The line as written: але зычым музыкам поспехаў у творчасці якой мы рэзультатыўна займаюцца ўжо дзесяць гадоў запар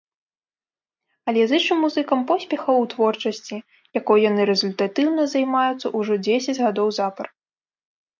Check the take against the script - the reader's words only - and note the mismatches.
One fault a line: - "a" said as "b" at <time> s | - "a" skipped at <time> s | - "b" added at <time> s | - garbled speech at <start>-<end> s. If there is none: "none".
- "мы" said as "яны" at 4.3 s